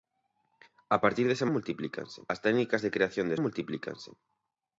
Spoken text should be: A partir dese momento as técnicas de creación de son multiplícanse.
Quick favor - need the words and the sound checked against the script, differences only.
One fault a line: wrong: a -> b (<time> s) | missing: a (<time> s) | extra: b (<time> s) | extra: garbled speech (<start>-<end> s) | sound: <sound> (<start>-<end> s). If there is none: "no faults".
wrong: momento -> multiplícanse (1.5 s)
missing: son (3.4 s)